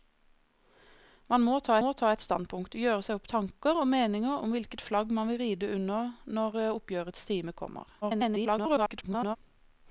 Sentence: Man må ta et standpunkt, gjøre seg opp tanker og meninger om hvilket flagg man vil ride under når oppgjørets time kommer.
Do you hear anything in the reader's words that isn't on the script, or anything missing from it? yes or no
yes